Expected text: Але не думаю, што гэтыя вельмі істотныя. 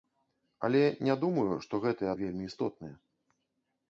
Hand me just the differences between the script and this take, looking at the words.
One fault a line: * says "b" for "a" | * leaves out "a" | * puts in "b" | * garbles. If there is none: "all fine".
all fine